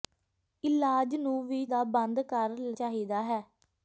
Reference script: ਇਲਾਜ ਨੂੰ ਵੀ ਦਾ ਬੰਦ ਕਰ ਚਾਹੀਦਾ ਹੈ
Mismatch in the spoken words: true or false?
false